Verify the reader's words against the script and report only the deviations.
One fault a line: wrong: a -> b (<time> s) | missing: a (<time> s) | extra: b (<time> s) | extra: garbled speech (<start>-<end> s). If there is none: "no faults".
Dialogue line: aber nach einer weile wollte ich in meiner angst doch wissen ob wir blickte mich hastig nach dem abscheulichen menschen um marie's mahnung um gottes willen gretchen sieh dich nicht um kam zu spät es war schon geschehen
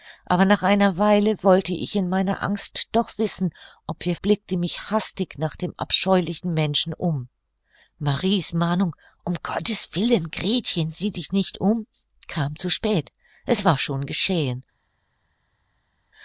no faults